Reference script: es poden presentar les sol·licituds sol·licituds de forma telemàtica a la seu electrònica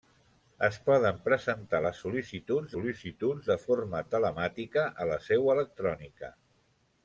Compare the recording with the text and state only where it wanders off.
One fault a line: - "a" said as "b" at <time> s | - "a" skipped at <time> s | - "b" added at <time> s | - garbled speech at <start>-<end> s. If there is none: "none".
none